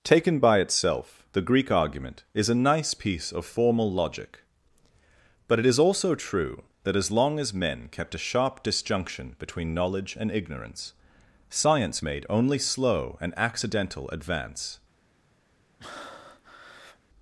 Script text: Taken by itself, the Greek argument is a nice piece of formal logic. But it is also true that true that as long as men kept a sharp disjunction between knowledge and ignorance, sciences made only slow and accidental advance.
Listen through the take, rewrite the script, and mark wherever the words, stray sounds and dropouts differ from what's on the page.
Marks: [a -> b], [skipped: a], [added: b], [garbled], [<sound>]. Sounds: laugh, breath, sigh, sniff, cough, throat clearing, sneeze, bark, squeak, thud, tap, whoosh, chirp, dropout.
Taken by itself, the Greek argument is a nice piece of formal logic. But it is also true that [skipped: true that] as long as men kept a sharp disjunction between knowledge and ignorance, [sciences -> science] made only slow and accidental advance. [breath]